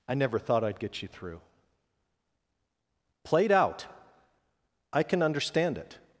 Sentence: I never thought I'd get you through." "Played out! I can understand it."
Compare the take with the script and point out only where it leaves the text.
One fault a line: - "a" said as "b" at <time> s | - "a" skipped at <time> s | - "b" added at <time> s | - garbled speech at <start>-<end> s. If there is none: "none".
none